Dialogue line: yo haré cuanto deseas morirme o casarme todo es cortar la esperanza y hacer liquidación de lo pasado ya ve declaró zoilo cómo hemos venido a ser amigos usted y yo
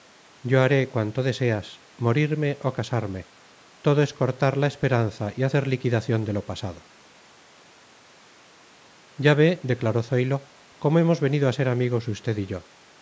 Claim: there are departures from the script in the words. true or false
false